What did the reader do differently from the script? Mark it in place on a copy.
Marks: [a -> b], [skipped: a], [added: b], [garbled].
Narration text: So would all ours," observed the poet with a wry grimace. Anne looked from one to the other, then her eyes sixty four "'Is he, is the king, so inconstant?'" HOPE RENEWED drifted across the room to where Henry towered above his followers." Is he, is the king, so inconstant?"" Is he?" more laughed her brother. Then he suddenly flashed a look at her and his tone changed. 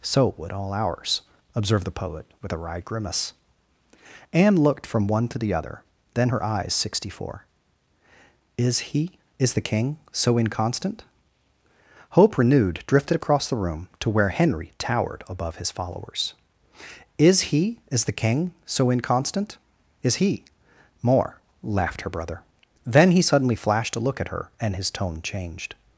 So would all ours," observed the poet with a wry grimace. Anne looked from one to the other, then her eyes sixty four "'Is he, is the king, so inconstant?'" HOPE RENEWED drifted across the room to where Henry towered above his followers." Is he, is the king, so inconstant?"" Is he?" more laughed her brother. Then he suddenly flashed a look at her and his tone changed.